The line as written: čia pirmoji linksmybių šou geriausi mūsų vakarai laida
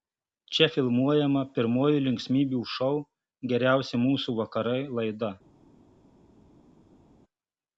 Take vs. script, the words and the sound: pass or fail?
fail